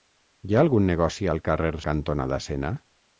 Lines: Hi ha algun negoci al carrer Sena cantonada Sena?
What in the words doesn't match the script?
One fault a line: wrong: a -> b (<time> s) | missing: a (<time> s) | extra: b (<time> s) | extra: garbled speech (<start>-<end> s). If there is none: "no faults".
missing: Sena (1.7 s)